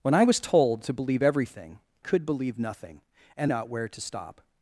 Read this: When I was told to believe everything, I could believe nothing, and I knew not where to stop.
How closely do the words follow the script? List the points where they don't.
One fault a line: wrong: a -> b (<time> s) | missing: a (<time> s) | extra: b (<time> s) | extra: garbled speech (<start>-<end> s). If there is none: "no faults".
missing: I (1.8 s)
missing: I knew (3.5 s)